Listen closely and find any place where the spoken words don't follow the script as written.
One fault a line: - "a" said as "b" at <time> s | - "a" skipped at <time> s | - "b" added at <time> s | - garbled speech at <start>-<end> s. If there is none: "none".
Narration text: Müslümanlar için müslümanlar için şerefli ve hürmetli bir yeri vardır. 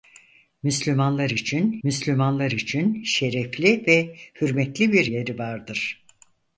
none